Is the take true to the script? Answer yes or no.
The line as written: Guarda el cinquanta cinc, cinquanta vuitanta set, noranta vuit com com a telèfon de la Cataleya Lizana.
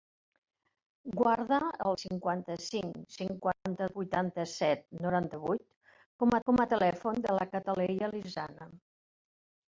yes